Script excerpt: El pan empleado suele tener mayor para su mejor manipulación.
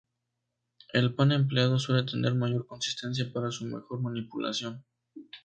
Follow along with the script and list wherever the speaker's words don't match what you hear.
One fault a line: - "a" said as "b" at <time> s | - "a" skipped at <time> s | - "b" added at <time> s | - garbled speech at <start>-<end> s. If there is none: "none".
- "consistencia" added at 2.7 s